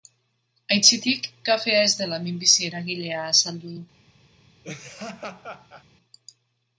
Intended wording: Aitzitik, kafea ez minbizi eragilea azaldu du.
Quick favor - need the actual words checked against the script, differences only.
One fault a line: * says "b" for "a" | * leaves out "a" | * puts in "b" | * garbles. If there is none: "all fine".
* puts in "dela"